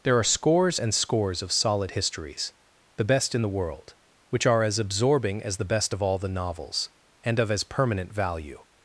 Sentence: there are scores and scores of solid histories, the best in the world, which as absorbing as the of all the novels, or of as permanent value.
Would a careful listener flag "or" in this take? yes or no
yes